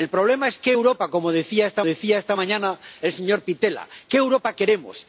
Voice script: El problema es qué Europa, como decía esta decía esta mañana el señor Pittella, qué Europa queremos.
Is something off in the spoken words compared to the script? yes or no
no